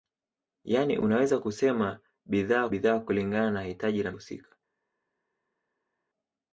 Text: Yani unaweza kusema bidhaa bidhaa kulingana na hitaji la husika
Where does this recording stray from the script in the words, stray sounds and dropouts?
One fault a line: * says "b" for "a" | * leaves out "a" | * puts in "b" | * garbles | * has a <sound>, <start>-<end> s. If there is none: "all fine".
all fine